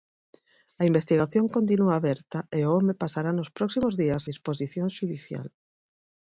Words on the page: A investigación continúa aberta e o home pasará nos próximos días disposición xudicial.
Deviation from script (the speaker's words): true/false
false